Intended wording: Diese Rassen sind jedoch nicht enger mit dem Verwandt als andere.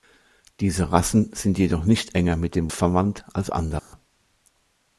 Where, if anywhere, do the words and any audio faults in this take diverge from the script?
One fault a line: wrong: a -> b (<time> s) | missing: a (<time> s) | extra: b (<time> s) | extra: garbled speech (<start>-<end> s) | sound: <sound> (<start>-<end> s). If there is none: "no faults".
sound: dropout (3.8-3.9 s)